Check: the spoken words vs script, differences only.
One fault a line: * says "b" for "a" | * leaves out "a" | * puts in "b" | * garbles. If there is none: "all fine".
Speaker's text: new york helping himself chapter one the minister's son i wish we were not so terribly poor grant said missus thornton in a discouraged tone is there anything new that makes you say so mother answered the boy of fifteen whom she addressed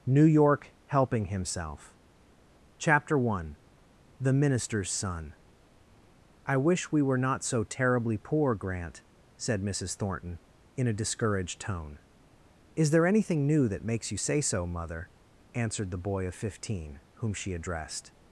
all fine